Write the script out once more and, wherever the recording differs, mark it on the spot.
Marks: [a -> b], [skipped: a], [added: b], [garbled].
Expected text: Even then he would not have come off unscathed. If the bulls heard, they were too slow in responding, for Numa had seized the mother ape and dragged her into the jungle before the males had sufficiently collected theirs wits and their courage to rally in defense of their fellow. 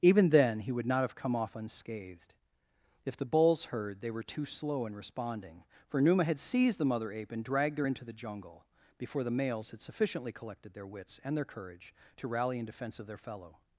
Even then he would not have come off unscathed. If the bulls heard, they were too slow in responding, for Numa had seized the mother ape and dragged her into the jungle before the males had sufficiently collected [theirs -> their] wits and their courage to rally in defense of their fellow.